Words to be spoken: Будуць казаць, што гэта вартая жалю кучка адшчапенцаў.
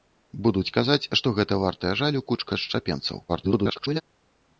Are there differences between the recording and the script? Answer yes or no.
yes